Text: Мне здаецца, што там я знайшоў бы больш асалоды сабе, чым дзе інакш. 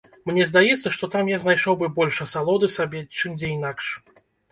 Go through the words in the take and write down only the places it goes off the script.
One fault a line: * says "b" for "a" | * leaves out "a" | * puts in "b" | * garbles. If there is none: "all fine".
all fine